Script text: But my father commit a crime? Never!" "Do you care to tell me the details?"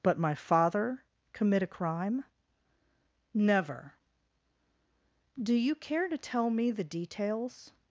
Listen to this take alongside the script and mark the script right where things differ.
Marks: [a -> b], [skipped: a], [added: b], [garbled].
But my father commit a crime? Never!" "Do you care to tell me the details?"